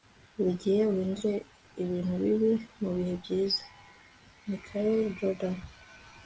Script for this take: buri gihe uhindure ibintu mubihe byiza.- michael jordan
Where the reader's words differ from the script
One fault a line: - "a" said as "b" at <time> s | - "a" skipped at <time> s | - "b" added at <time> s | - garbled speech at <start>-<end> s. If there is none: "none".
- "bibi" added at 2.2 s